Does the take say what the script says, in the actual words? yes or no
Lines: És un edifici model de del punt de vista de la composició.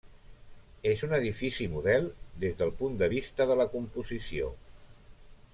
no